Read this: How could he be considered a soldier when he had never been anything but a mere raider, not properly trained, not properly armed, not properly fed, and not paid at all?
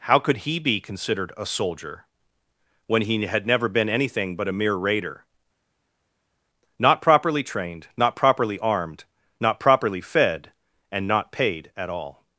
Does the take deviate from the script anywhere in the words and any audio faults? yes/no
no